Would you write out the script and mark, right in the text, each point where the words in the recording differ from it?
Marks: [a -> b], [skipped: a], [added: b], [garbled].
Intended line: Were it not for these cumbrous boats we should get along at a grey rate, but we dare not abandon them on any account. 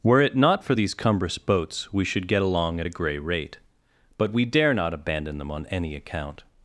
Were it not for these cumbrous boats we should get along at a grey rate, but we dare not abandon them on any account.